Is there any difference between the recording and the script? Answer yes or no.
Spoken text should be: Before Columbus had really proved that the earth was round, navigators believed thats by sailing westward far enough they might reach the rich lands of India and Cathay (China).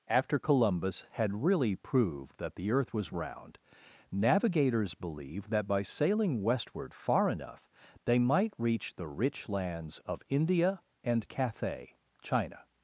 yes